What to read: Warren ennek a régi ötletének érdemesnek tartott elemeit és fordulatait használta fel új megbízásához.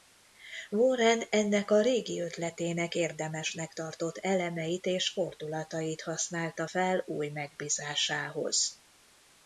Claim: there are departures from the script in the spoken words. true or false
false